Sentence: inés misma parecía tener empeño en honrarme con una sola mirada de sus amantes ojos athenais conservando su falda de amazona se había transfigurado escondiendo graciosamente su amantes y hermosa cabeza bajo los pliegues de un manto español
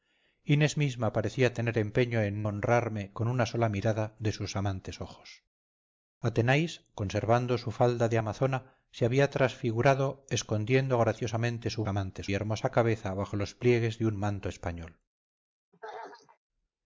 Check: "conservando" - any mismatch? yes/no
no